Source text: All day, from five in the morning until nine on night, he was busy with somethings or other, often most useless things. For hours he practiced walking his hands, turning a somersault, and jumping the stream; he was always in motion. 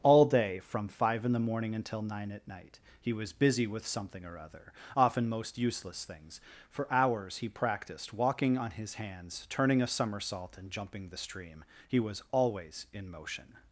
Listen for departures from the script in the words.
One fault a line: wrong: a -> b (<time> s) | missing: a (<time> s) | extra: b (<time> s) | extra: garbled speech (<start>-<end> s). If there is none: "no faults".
wrong: on -> at (2.3 s)
wrong: somethings -> something (3.9 s)
extra: on (8.6 s)